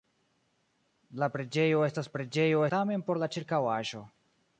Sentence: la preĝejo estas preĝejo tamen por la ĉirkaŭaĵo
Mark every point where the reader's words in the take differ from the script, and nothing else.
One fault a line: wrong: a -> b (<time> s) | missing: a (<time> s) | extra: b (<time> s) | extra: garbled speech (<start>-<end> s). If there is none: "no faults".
no faults